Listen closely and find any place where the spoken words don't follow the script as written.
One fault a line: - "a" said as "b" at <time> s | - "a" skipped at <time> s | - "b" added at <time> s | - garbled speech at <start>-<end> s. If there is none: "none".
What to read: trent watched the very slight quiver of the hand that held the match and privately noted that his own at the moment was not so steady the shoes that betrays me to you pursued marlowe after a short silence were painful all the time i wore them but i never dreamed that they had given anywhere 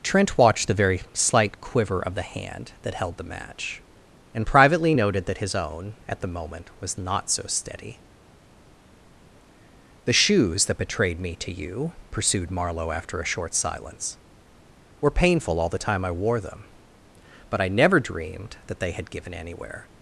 - "betrays" said as "betrayed" at 10.8 s